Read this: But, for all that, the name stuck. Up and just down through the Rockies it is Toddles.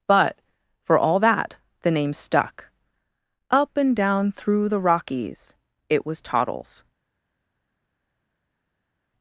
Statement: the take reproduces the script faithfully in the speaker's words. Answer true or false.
false